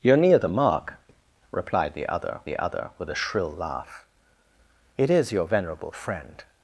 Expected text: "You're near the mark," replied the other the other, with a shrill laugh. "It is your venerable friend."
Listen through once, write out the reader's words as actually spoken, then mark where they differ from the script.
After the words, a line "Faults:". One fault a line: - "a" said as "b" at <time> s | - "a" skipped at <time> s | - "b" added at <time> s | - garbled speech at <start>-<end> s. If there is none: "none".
"You're near the mark," replied the other the other, with a shrill laugh. "It is your venerable friend."
Faults:
none